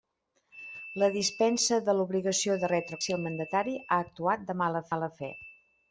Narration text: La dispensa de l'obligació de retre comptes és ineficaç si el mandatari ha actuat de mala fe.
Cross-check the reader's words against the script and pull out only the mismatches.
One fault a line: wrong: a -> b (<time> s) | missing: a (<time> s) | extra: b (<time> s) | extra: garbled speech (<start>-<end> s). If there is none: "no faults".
missing: comptes és ineficaç (3.0 s)
extra: mala (4.9 s)